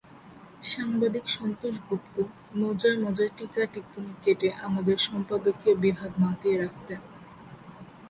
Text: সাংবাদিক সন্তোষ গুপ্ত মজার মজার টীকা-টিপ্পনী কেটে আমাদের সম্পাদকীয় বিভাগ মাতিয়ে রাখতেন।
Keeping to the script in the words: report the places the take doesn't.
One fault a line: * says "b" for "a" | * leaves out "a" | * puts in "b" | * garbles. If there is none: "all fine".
all fine